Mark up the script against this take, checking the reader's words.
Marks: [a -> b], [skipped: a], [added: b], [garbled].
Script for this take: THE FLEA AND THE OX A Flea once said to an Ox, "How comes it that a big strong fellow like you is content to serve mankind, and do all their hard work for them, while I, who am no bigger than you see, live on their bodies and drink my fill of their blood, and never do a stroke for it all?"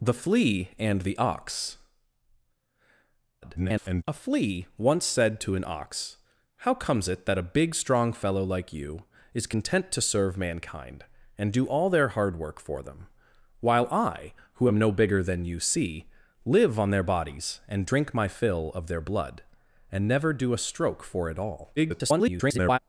THE FLEA AND THE OX [garbled] A Flea once said to an Ox, "How comes it that a big strong fellow like you is content to serve mankind, and do all their hard work for them, while I, who am no bigger than you see, live on their bodies and drink my fill of their blood, and never do a stroke for it all?" [garbled]